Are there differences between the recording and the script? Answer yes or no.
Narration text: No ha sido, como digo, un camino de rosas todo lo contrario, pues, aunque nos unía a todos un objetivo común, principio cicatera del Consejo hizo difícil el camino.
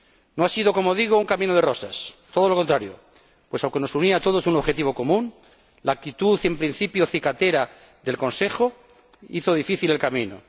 yes